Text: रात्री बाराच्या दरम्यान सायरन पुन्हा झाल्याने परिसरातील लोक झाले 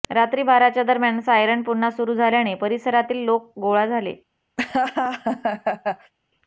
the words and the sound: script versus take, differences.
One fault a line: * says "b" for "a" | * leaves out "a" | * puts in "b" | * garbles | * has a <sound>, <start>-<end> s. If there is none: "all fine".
* puts in "सुरू"
* puts in "गोळा"
* has a laugh, 4.6-6.1 s